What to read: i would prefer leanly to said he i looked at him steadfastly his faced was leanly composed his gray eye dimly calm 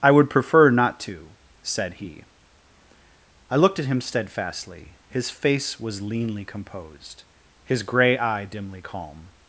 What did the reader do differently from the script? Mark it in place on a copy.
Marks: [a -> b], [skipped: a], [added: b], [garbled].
i would prefer [leanly -> not] to said he i looked at him steadfastly his [faced -> face] was leanly composed his gray eye dimly calm